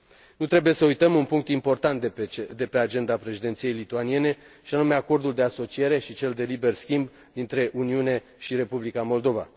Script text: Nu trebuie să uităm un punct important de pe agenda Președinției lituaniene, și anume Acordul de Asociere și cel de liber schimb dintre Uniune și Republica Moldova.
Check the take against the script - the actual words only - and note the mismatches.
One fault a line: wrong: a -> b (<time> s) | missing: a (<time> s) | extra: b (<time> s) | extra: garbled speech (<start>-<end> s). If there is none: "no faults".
no faults